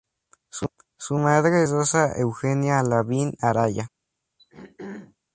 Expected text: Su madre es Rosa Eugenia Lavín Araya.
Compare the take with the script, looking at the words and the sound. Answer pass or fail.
fail